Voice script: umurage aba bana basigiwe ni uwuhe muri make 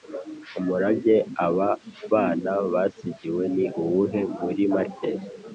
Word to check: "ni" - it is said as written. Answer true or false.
true